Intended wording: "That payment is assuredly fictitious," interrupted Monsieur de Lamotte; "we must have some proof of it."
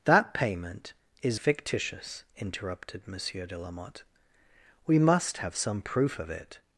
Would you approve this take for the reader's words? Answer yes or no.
no